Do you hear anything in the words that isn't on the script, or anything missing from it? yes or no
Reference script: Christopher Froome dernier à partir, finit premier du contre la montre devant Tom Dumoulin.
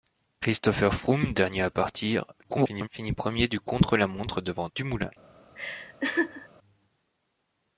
yes